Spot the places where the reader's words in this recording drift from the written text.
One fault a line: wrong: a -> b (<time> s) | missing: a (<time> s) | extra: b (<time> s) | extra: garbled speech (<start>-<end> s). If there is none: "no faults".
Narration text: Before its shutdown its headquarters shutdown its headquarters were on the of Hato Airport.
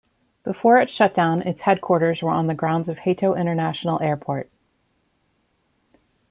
missing: shutdown its headquarters (2.2 s)
extra: grounds (2.5 s)
extra: International (3.4 s)